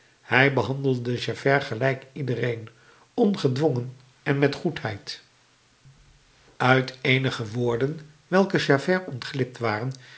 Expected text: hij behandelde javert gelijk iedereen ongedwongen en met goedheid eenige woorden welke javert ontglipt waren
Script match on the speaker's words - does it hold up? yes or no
no